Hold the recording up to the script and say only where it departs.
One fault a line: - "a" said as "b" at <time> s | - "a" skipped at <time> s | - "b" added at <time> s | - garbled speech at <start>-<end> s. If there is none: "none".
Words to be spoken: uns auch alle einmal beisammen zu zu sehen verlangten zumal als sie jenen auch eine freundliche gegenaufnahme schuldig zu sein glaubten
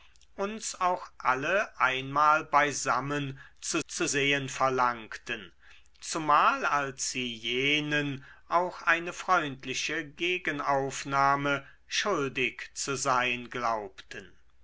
none